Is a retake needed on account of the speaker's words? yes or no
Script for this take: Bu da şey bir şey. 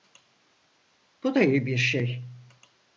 yes